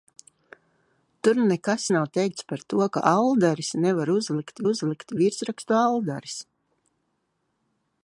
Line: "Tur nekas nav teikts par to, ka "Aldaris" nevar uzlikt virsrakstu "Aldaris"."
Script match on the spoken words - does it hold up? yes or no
no